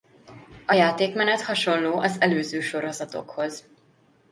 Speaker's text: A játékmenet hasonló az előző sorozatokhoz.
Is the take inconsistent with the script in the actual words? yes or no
no